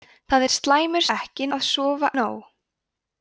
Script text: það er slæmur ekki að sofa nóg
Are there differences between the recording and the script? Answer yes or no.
no